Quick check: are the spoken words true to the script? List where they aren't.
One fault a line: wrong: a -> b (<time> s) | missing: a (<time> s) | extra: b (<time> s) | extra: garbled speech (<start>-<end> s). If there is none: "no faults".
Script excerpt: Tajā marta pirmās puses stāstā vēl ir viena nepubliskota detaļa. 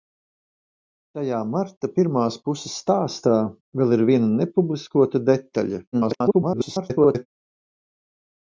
extra: garbled speech (5.9-7.3 s)